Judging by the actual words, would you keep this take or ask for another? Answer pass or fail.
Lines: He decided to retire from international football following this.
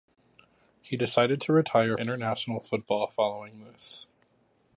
fail